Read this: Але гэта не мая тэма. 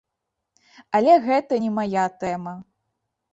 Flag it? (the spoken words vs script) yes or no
no